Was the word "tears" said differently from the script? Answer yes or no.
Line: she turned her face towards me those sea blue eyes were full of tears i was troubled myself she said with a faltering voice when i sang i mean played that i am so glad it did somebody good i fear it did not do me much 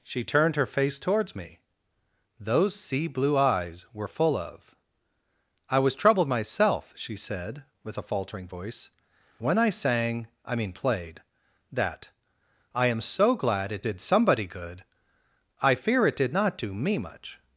yes